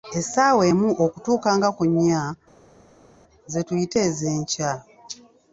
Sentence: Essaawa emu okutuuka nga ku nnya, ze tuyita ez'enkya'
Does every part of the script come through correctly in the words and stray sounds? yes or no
yes